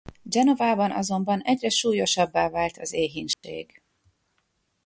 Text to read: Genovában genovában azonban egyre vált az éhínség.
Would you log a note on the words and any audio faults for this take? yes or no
yes